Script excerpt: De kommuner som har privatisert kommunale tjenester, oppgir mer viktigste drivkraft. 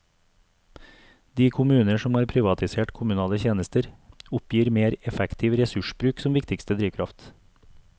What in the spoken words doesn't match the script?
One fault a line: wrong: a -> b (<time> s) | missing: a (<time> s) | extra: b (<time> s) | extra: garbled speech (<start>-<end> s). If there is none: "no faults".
extra: effektiv ressursbruk som (5.1 s)